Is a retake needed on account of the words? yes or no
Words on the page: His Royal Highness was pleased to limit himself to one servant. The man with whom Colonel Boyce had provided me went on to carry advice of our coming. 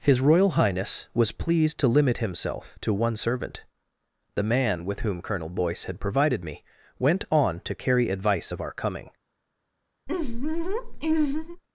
no